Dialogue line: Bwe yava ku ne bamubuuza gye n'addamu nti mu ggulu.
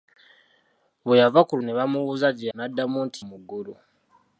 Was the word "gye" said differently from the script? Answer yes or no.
no